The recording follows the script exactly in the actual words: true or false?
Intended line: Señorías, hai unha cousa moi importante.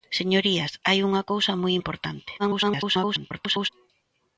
false